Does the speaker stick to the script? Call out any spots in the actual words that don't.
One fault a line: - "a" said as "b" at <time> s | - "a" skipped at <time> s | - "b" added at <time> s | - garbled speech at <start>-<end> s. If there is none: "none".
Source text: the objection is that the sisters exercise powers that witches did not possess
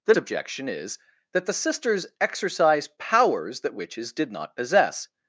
none